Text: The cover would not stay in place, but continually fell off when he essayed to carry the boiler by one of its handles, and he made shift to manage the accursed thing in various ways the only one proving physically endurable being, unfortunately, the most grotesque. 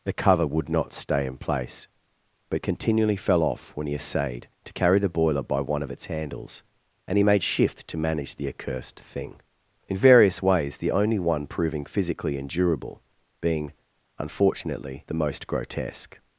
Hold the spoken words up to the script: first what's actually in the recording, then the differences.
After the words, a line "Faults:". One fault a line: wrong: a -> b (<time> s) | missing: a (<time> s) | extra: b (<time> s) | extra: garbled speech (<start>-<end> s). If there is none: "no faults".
The cover would not stay in place, but continually fell off when he essayed to carry the boiler by one of its handles, and he made shift to manage the accursed thing in various ways the only one proving physically endurable being, unfortunately, the most grotesque.
Faults:
no faults